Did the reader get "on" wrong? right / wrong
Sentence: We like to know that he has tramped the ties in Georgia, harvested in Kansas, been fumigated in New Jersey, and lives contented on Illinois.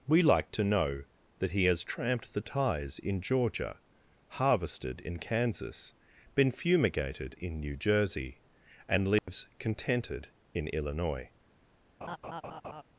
wrong